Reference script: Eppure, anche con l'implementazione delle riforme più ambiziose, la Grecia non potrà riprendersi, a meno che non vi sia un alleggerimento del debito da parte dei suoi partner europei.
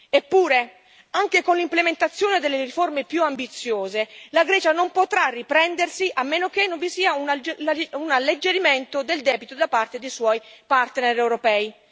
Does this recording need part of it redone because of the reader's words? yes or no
no